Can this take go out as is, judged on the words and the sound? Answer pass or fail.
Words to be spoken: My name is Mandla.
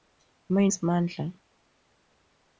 fail